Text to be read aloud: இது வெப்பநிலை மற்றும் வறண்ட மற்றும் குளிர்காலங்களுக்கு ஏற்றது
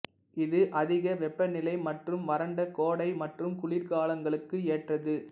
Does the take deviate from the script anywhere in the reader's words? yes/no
yes